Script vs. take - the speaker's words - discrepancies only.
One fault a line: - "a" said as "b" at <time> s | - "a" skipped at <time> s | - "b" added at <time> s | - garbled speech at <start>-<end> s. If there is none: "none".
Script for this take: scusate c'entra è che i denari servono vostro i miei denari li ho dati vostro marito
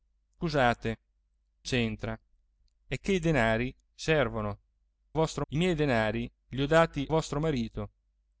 none